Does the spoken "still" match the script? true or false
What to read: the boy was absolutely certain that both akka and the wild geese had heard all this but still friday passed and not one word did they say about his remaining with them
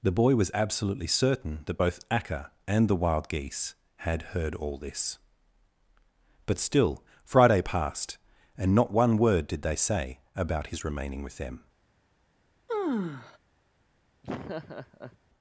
true